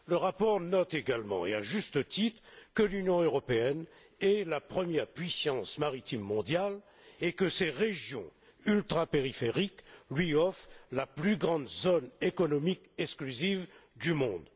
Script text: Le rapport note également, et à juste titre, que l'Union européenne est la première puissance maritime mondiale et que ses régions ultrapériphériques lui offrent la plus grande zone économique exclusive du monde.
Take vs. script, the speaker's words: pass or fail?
pass